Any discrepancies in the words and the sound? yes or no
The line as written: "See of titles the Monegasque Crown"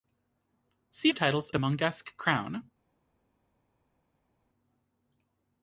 no